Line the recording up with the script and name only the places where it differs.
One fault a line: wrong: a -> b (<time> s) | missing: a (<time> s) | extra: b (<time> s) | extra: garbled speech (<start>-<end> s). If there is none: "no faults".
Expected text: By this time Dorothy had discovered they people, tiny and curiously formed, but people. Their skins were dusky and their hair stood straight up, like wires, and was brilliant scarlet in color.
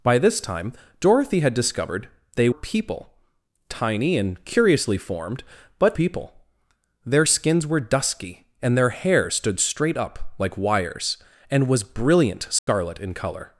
no faults